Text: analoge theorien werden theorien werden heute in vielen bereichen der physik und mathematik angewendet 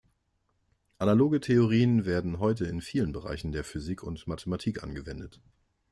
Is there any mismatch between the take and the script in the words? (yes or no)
yes